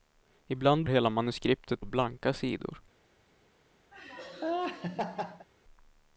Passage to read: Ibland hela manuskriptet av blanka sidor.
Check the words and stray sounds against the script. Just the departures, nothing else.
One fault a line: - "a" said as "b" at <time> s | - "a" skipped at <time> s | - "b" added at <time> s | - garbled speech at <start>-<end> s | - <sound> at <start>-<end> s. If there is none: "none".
- laugh at 3.9-5.5 s